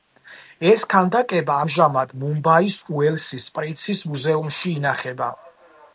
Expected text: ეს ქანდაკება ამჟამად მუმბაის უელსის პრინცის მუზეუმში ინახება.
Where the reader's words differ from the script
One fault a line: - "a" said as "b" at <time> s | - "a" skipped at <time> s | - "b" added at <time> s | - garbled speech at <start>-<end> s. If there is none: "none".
none